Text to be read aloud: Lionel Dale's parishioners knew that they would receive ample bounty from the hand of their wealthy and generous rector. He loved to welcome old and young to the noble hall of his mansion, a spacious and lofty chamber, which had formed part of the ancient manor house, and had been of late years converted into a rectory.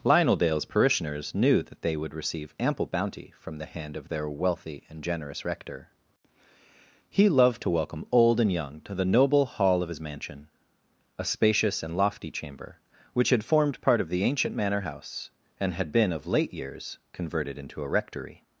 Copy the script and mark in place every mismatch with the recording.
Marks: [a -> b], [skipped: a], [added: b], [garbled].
Lionel Dale's parishioners knew that they would receive ample bounty from the hand of their wealthy and generous rector. He loved to welcome old and young to the noble hall of his mansion, a spacious and lofty chamber, which had formed part of the ancient manor house, and had been of late years converted into a rectory.